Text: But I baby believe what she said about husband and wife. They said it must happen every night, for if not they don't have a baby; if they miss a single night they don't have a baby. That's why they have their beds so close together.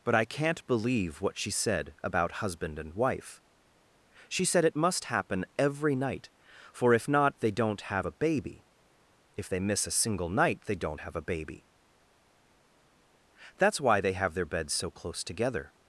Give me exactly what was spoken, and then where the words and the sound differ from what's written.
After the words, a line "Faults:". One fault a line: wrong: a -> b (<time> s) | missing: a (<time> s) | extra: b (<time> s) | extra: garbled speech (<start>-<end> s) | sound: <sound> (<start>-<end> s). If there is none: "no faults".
But I can't believe what she said about husband and wife. She said it must happen every night, for if not they don't have a baby; if they miss a single night they don't have a baby. That's why they have their beds so close together.
Faults:
wrong: baby -> can't (0.2 s)
wrong: They -> She (4.3 s)